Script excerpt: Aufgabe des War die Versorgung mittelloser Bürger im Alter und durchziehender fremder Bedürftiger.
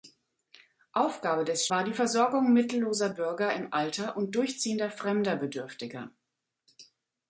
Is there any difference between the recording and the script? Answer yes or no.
no